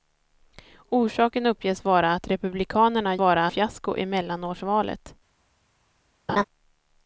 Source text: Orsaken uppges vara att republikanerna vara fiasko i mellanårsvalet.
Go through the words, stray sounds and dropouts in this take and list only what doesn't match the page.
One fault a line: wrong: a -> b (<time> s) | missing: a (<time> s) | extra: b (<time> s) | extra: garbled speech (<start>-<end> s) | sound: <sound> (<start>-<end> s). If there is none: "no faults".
sound: laugh (6.3-6.4 s)